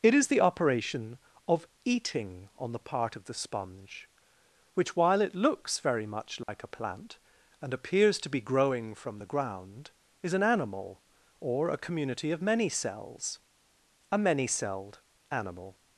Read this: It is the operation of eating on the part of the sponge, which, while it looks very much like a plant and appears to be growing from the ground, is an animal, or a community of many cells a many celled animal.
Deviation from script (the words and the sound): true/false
true